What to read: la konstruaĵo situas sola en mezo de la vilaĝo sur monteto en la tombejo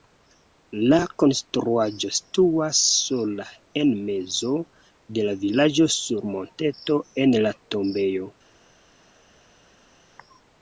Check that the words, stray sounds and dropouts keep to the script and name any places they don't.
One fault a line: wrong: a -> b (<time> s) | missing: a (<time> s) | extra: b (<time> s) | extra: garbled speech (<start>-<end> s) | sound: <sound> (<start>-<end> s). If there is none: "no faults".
no faults